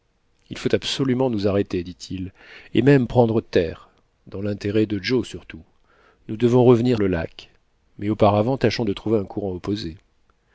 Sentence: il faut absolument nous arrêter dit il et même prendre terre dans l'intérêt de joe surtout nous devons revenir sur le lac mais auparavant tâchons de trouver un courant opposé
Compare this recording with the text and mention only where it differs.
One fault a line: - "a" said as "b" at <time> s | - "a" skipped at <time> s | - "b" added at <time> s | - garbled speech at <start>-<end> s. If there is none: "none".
- "sur" skipped at 7.0 s